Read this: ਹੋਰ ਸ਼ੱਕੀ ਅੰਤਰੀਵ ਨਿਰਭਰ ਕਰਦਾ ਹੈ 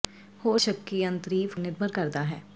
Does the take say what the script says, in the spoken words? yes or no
yes